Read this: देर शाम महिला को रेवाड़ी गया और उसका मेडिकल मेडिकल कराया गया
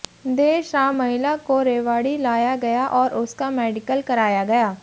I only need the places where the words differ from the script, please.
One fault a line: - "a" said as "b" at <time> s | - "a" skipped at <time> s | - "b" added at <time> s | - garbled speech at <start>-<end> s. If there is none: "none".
- "लाया" added at 2.2 s
- "मेडिकल" skipped at 4.0 s